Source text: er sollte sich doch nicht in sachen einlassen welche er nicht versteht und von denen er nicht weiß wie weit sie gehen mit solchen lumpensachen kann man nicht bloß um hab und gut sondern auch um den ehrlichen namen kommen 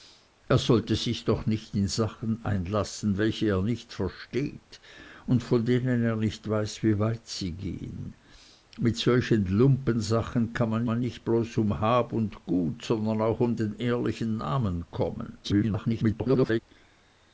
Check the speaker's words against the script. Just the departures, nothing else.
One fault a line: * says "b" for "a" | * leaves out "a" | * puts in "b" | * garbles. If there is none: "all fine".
* puts in "man"
* garbles